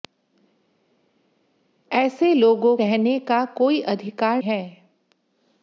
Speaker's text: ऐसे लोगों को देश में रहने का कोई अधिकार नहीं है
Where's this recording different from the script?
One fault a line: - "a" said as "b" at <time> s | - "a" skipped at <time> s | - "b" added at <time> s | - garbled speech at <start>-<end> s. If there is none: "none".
- "को देश में" skipped at 2.8 s
- "नहीं" skipped at 4.4 s